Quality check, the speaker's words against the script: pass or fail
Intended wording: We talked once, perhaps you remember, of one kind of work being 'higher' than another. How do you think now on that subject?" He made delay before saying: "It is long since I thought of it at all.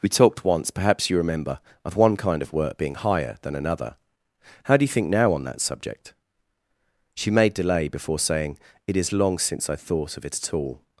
fail